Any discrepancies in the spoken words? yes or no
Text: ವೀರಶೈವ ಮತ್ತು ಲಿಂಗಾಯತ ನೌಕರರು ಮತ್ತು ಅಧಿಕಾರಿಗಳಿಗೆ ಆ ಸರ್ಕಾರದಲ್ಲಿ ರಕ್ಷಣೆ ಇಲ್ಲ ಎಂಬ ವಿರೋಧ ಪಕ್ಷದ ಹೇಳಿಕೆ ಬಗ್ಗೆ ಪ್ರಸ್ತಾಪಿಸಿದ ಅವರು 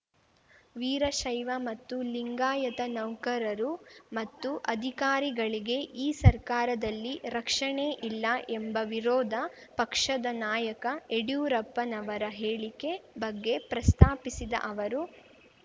yes